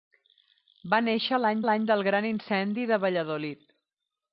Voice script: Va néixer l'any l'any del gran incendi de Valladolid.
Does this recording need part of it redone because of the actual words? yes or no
no